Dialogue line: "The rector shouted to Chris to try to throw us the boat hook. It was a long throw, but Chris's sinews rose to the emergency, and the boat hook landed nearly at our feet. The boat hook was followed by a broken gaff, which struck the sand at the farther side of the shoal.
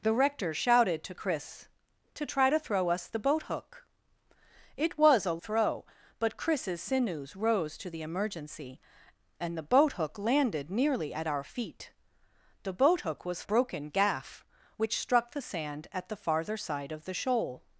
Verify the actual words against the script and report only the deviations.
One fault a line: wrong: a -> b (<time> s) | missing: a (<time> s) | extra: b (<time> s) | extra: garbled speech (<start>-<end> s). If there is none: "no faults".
missing: long (5.4 s)
missing: followed by a (13.4 s)